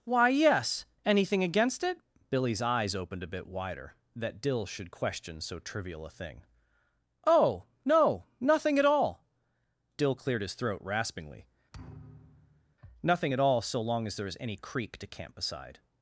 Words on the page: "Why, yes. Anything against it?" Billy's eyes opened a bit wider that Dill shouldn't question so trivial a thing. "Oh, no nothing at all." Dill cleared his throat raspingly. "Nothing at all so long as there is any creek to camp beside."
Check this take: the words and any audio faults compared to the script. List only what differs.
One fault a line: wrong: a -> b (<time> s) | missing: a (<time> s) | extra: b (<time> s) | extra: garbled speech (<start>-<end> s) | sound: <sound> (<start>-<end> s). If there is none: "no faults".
wrong: shouldn't -> should (4.7 s)
sound: thud (11.7-12.8 s)